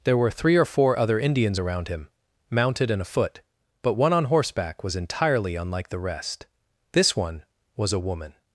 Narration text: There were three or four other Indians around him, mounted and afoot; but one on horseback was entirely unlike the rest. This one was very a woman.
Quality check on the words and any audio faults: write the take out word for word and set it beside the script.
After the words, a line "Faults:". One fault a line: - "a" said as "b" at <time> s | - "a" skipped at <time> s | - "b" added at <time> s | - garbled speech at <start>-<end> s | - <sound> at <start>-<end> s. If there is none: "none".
There were three or four other Indians around him, mounted and afoot; but one on horseback was entirely unlike the rest. This one was a woman.
Faults:
- "very" skipped at 7.9 s